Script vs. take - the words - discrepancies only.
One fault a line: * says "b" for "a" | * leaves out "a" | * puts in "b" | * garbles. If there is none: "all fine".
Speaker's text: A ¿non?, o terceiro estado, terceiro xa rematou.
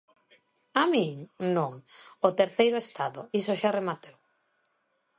* puts in "min"
* says "iso" for "terceiro"